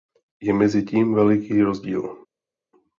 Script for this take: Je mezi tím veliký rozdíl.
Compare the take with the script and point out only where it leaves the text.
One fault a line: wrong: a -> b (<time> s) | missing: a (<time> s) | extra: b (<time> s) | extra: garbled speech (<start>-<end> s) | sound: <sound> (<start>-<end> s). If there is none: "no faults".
no faults